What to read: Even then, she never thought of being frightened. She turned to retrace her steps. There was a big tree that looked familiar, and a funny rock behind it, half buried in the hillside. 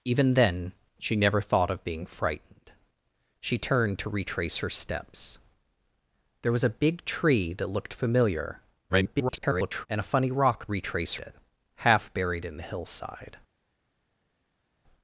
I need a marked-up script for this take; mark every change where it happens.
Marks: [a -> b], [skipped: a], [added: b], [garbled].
Even then, she never thought of being frightened. She turned to retrace her steps. There was a big tree that looked familiar, [garbled] and a funny rock [behind -> retrace] it, half buried in the hillside.